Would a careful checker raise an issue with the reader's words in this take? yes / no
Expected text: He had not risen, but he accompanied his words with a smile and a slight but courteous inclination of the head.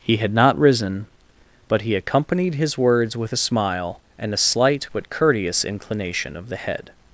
no